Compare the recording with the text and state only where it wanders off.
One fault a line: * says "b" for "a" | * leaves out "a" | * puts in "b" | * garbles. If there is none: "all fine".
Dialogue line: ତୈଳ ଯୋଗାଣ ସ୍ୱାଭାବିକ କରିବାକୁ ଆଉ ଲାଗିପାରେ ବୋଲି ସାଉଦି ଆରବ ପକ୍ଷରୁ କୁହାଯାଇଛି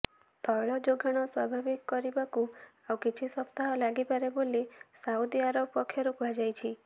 * puts in "କିଛି ସପ୍ତାହ"